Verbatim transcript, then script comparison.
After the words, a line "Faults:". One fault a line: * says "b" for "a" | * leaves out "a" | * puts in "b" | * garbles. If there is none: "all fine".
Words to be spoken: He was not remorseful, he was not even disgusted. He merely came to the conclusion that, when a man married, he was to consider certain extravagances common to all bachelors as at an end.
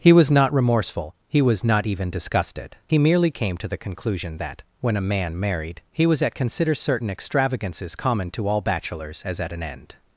He was not remorseful, he was not even disgusted. He merely came to the conclusion that, when a man married, he was at consider certain extravagances common to all bachelors as at an end.
Faults:
* says "at" for "to"